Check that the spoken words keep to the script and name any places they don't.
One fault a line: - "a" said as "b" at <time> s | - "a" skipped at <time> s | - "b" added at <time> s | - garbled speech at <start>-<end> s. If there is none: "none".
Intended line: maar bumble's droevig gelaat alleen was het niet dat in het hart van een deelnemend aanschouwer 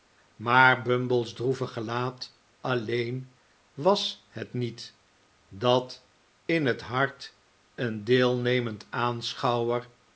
- "van" skipped at 7.3 s